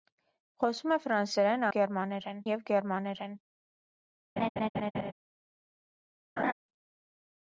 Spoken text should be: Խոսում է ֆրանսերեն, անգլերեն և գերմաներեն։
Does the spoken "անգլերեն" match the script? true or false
false